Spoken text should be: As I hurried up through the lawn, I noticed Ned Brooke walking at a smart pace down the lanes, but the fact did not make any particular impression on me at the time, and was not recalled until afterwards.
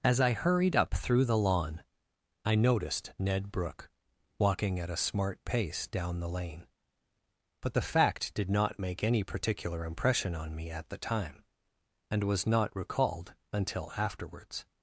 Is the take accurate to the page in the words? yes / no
no